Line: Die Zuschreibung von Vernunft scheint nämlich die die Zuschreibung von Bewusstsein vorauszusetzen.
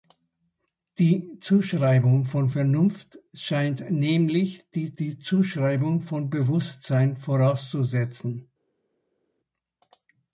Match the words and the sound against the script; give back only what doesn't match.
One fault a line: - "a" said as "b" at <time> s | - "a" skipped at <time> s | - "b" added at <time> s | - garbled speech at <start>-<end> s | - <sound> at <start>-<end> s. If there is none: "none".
none